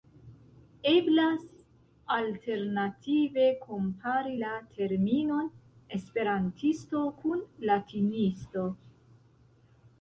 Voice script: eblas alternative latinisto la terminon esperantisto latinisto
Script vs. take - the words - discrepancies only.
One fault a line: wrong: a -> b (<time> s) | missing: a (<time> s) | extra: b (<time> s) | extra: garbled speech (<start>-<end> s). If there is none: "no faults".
wrong: latinisto -> kompari (3.7 s)
extra: kun (7.2 s)